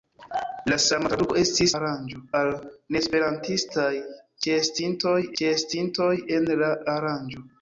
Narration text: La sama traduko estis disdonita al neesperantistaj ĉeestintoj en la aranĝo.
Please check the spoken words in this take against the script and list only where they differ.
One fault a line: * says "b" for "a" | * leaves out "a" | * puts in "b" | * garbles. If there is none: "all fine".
* says "aranĝo" for "disdonita"
* puts in "ĉeestintoj"